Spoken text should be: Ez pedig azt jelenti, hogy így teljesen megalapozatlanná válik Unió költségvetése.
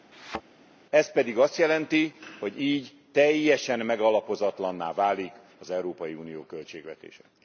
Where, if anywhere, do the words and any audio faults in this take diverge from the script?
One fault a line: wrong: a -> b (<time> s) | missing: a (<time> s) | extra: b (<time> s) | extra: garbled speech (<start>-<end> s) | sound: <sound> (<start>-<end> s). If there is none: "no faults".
sound: thud (0.1-0.4 s)
extra: az Európai (5.6 s)